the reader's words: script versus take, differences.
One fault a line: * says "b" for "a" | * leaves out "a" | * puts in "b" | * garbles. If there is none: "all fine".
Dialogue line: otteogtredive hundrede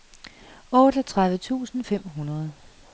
* puts in "tusind fem"